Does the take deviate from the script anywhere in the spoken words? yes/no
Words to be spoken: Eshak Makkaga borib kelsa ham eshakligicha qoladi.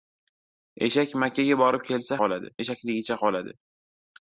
yes